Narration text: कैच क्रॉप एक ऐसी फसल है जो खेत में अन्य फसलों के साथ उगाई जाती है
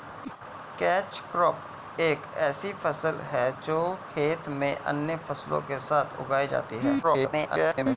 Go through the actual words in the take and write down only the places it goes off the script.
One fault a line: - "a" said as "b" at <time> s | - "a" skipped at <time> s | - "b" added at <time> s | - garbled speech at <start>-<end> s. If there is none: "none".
- garbled speech at 7.0-8.0 s